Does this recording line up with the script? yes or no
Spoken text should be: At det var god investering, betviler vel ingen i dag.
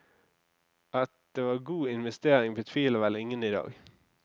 yes